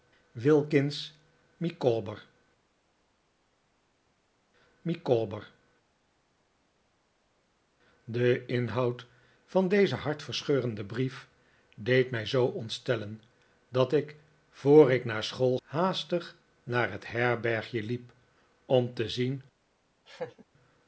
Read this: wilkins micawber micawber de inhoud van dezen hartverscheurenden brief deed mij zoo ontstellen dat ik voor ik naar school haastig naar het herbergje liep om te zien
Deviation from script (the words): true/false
false